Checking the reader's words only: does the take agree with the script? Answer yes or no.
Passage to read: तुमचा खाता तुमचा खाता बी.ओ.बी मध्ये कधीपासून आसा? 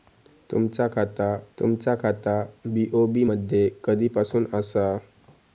yes